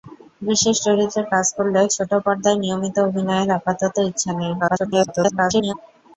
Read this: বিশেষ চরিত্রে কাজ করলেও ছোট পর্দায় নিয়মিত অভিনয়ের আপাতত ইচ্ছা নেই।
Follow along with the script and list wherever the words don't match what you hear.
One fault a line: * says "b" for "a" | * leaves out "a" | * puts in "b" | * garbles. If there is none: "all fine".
* garbles